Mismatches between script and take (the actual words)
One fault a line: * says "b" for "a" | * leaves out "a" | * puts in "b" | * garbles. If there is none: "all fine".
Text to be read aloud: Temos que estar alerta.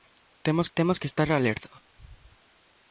* puts in "temos"